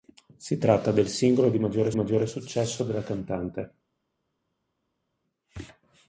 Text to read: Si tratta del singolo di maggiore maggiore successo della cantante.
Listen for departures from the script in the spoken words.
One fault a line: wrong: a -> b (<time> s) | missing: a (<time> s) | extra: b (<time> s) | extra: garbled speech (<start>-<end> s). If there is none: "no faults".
no faults